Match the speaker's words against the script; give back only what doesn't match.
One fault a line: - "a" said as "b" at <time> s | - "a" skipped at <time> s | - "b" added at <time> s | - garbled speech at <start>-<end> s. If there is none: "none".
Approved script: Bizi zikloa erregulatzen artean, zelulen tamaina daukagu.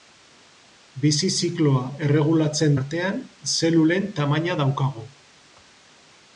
none